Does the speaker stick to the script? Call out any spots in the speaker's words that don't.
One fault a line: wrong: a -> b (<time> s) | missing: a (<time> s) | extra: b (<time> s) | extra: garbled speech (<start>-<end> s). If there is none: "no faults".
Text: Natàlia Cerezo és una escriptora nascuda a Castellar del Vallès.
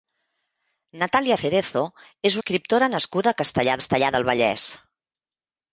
missing: una (2.4 s)
extra: Castellar (3.8 s)